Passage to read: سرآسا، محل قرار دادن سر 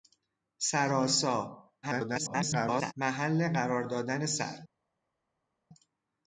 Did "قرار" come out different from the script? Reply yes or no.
no